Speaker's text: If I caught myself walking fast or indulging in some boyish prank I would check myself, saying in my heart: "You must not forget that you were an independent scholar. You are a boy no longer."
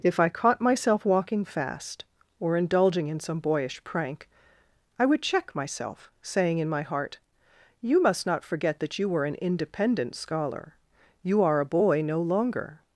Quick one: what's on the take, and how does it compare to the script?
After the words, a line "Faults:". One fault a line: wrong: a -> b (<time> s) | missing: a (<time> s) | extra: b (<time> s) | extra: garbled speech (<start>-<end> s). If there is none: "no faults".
If I caught myself walking fast or indulging in some boyish prank I would check myself, saying in my heart: "You must not forget that you were an independent scholar. You are a boy no longer."
Faults:
no faults